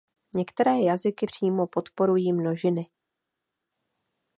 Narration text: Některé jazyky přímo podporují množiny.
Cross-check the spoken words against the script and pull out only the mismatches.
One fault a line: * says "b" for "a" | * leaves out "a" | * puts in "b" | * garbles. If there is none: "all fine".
all fine